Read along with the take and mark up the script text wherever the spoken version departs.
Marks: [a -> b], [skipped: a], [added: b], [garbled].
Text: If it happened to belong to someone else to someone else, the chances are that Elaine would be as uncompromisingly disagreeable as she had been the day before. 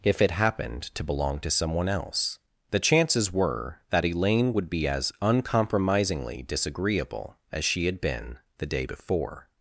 If it happened to belong to someone else [skipped: to someone else,] the chances [are -> were] that Elaine would be as uncompromisingly disagreeable as she had been the day before.